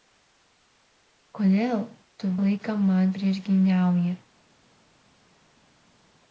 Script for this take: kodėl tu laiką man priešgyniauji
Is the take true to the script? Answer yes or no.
yes